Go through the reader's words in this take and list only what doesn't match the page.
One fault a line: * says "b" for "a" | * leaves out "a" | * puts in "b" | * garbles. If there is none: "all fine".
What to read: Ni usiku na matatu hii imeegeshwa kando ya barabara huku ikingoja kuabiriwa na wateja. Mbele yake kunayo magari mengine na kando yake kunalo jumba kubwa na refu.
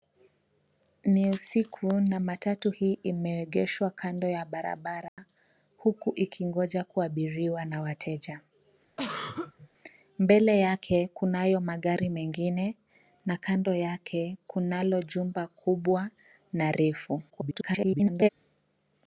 * garbles